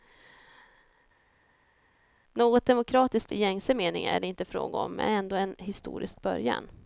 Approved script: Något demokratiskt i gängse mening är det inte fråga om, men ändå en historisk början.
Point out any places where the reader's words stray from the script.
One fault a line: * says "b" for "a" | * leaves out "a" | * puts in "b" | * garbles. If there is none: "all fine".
all fine